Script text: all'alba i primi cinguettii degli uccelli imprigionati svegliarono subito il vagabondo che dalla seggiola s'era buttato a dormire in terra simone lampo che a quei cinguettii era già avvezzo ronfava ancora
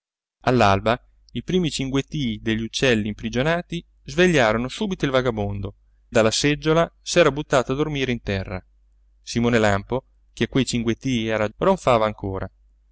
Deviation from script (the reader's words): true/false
true